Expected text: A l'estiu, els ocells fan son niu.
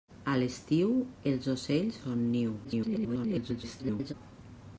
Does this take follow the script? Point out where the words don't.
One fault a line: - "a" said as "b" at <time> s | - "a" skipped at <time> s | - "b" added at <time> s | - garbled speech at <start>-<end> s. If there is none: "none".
- "fan" skipped at 2.0 s
- garbled speech at 2.6-4.1 s